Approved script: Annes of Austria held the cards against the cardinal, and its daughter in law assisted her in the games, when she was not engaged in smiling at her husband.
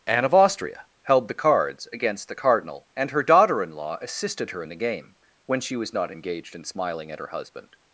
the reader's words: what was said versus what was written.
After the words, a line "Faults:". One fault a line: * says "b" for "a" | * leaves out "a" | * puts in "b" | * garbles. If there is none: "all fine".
Anne of Austria held the cards against the cardinal, and her daughter in law assisted her in the game, when she was not engaged in smiling at her husband.
Faults:
* says "Anne" for "Annes"
* says "her" for "its"
* says "game" for "games"